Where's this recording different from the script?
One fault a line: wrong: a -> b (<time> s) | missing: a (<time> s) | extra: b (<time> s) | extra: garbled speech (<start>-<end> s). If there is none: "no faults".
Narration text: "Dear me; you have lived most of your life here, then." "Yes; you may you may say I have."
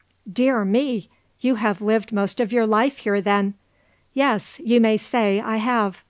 missing: you may (4.9 s)